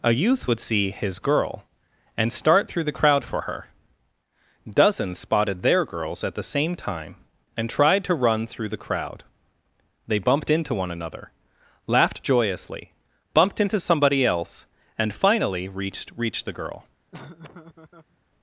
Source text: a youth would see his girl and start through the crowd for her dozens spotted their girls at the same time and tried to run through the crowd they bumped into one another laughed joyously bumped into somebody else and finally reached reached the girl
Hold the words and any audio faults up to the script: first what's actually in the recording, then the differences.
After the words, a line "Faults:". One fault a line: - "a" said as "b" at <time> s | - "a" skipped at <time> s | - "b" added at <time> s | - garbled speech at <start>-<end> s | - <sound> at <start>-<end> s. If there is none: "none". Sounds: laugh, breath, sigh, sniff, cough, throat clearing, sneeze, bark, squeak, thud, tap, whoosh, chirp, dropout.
a youth would see his girl and start through the crowd for her dozens spotted their girls at the same time and tried to run through the crowd they bumped into one another laughed joyously bumped into somebody else and finally reached reached the girl
Faults:
- laugh at 17.1-18.2 s